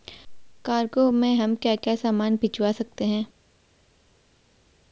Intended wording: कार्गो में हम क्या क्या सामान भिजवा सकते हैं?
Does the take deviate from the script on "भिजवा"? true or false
false